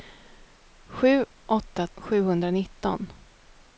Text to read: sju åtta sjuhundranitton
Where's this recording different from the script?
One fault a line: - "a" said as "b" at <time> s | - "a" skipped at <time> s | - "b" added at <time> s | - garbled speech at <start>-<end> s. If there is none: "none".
none